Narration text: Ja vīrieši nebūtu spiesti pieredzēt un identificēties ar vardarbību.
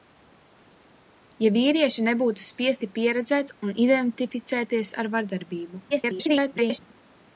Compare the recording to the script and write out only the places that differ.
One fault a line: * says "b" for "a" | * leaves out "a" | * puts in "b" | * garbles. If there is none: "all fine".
* garbles